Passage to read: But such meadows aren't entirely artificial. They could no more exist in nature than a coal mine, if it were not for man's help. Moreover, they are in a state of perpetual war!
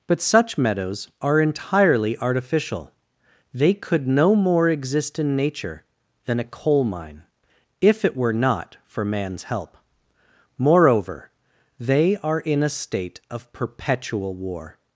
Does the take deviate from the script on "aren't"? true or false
true